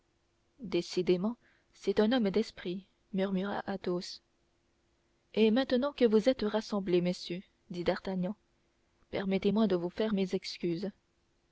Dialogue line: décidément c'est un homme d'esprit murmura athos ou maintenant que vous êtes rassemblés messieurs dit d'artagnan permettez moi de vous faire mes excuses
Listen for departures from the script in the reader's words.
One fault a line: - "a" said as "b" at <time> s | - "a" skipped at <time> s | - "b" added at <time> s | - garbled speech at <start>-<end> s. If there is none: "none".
- "ou" said as "et" at 5.3 s